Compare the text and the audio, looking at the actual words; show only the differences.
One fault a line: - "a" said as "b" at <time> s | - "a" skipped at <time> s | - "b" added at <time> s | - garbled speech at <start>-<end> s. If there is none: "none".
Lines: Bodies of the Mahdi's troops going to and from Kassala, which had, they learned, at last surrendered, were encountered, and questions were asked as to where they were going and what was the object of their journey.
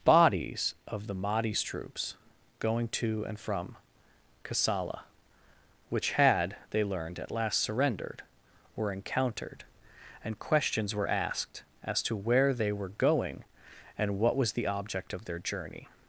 none